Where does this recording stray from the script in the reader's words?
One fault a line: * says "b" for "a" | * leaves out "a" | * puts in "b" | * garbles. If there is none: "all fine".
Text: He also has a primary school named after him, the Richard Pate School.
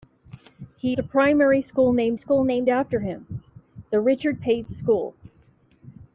* says "a primary school named" for "also has a primary"